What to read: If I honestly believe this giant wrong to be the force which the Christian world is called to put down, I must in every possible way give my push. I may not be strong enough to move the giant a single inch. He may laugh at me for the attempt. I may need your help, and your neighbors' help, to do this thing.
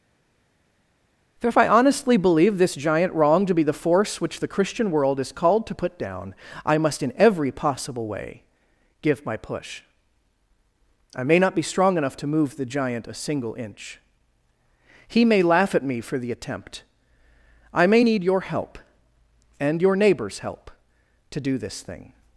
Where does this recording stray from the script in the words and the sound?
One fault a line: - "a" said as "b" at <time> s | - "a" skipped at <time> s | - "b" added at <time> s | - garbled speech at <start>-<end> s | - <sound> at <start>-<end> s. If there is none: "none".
- "for" added at 1.4 s